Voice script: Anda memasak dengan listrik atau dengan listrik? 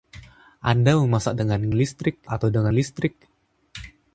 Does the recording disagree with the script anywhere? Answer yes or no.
no